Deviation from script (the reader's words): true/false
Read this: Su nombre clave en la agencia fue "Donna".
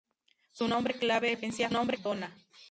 true